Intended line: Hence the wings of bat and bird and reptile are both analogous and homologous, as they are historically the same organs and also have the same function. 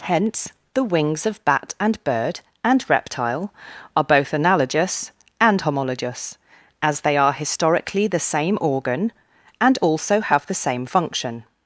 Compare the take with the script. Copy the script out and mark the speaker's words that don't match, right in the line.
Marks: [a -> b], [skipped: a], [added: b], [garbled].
Hence the wings of bat and bird and reptile are both analogous and homologous, as they are historically the same [organs -> organ] and also have the same function.